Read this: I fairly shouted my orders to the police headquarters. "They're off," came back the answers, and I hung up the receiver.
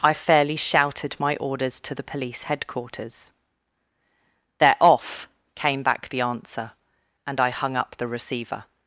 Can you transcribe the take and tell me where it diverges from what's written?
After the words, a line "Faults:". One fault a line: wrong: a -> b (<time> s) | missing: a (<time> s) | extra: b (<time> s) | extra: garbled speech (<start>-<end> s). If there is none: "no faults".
I fairly shouted my orders to the police headquarters. "They're off," came back the answer, and I hung up the receiver.
Faults:
wrong: answers -> answer (6.2 s)